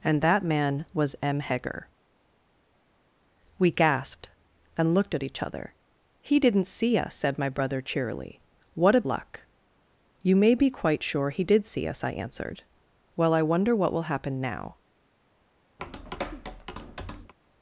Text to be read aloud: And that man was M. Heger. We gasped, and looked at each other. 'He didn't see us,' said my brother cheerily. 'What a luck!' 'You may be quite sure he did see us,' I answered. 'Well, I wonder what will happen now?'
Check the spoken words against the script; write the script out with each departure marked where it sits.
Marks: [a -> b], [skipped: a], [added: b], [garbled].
And that man was M. Heger. We gasped, and looked at each other. 'He didn't see us,' said my brother cheerily. 'What a luck!' 'You may be quite sure he did see us,' I answered. 'Well, I wonder what will happen now?'